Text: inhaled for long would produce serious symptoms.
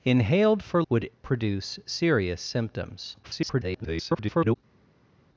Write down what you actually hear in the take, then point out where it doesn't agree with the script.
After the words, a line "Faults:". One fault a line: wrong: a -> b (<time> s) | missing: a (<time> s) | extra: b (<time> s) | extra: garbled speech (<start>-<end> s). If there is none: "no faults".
inhaled for would produce serious symptoms. [garbled]
Faults:
missing: long (0.8 s)
extra: garbled speech (3.2-4.6 s)